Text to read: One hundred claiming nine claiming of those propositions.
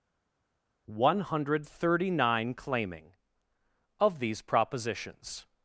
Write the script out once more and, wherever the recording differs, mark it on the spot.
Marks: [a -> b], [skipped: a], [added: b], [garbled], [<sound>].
One hundred [claiming -> thirty] nine claiming of [those -> these] propositions.